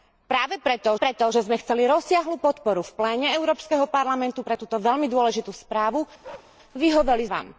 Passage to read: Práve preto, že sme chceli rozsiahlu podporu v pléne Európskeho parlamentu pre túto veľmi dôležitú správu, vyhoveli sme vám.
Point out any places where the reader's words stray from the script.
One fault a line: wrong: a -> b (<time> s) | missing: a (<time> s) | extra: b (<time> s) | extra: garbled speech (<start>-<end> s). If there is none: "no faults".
extra: preto (1.0 s)
missing: sme (7.3 s)